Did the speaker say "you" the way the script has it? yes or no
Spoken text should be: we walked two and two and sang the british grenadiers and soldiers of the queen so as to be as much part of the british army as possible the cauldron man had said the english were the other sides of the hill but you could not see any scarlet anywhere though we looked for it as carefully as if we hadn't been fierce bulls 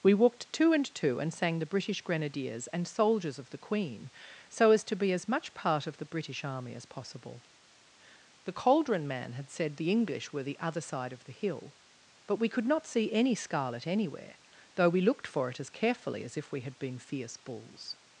no